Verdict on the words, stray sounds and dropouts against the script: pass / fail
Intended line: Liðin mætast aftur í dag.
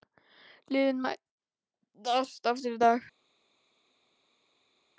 pass